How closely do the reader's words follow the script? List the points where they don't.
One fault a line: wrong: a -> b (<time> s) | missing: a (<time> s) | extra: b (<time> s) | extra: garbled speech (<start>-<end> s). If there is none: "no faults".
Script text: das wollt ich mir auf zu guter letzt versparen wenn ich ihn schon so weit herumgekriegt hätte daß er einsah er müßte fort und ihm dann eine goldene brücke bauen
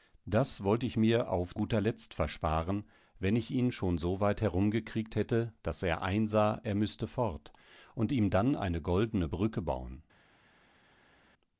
missing: zu (1.6 s)